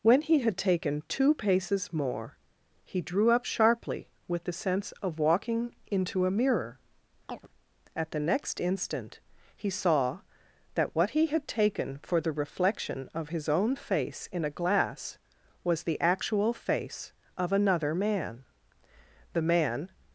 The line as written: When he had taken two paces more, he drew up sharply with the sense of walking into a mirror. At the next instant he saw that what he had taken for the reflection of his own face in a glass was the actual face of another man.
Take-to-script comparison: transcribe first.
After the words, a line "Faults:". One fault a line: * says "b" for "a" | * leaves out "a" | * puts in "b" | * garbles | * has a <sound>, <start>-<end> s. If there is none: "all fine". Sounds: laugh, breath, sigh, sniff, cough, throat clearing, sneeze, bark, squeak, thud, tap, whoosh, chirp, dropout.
When he had taken two paces more, he drew up sharply with the sense of walking into a mirror. At the next instant he saw that what he had taken for the reflection of his own face in a glass was the actual face of another man. The man
Faults:
* has a chirp, 7.3-7.5 s
* puts in "The man"